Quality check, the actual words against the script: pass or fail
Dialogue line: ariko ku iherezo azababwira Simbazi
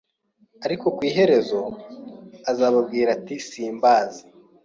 fail